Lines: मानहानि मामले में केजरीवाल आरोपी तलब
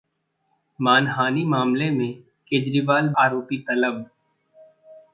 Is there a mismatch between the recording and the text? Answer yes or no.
no